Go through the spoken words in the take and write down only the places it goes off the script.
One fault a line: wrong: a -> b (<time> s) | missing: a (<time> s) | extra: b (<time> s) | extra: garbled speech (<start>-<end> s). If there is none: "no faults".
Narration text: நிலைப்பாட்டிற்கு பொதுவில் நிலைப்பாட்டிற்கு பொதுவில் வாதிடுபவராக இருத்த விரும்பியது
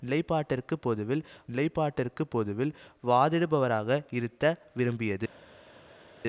no faults